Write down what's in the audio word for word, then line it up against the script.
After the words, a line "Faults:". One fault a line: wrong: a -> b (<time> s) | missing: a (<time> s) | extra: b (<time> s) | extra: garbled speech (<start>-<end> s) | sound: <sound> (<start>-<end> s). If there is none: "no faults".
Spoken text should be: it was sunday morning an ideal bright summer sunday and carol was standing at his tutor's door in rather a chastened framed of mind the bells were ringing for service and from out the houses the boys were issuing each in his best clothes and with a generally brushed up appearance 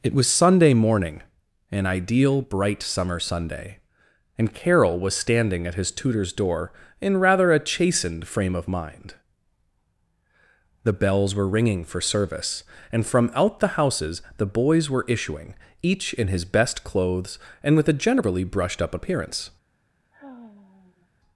it was sunday morning an ideal bright summer sunday and carol was standing at his tutor's door in rather a chastened frame of mind the bells were ringing for service and from out the houses the boys were issuing each in his best clothes and with a generally brushed up appearance
Faults:
wrong: framed -> frame (8.2 s)
sound: sigh (20.1-21.1 s)